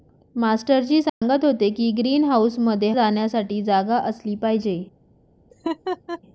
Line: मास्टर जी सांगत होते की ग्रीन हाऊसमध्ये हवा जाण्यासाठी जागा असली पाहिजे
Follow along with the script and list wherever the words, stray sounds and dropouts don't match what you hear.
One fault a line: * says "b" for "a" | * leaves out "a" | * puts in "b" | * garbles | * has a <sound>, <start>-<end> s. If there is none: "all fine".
* has a dropout, 1.1-1.2 s
* leaves out "हवा"
* has a laugh, 5.5-6.2 s